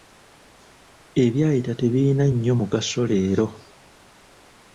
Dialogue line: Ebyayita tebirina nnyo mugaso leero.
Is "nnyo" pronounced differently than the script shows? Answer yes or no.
no